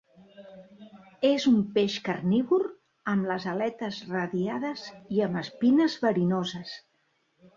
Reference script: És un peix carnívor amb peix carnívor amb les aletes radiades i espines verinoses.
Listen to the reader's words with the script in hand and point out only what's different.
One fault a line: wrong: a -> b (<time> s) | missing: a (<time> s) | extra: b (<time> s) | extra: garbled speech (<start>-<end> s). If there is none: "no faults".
missing: peix carnívor amb (3.3 s)
extra: amb (5.3 s)